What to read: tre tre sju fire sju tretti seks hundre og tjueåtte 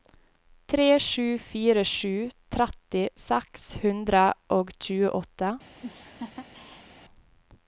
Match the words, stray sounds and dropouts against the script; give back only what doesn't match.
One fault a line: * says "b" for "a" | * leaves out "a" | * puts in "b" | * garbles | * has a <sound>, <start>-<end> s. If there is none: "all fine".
* leaves out "tre"
* has a laugh, 5.8-6.9 s